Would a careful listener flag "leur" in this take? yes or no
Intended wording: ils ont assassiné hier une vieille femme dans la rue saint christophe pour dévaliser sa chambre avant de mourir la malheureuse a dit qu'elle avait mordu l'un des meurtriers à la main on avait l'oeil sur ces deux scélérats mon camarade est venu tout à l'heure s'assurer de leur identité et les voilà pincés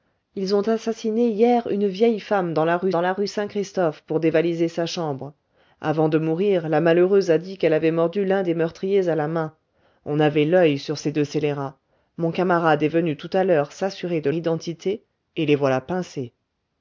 yes